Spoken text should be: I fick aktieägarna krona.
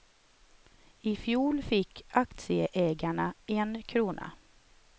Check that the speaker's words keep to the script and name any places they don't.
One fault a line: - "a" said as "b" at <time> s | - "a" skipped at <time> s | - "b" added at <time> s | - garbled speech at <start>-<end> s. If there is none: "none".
- "fjol" added at 1.1 s
- "en" added at 3.5 s